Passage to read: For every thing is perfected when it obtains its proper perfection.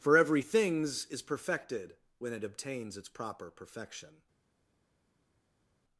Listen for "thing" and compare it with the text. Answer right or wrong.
wrong